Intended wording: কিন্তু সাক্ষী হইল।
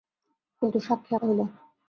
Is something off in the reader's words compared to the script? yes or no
no